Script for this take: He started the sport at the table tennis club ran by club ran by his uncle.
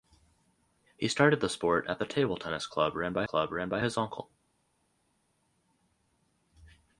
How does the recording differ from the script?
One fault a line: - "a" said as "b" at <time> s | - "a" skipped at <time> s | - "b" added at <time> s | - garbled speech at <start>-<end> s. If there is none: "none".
none